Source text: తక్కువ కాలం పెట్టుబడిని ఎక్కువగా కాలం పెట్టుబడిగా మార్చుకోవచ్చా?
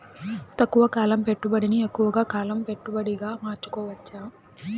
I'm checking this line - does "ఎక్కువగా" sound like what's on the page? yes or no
yes